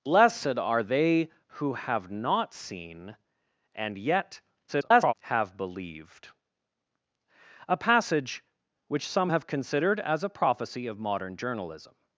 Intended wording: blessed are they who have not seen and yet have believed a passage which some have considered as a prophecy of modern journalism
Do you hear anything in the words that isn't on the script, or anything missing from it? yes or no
yes